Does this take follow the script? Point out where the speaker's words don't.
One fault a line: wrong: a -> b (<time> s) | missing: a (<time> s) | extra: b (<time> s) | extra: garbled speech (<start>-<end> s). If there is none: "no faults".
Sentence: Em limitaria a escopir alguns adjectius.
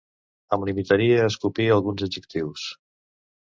no faults